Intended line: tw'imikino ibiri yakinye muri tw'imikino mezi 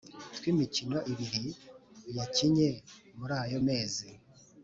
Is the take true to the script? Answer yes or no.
no